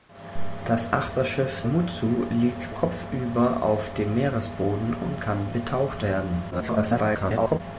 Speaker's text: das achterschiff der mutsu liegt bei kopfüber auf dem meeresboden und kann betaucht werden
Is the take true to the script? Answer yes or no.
no